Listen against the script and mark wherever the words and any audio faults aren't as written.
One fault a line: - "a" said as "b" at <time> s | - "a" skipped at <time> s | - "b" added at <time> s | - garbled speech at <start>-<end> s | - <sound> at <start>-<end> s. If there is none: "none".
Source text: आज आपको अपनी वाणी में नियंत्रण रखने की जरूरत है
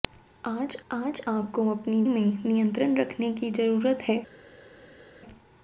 - "आज" added at 0.9 s
- "वाणी" skipped at 2.0 s